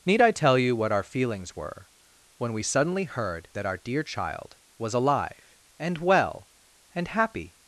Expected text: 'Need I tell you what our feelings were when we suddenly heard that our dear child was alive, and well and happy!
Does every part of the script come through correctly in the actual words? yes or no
yes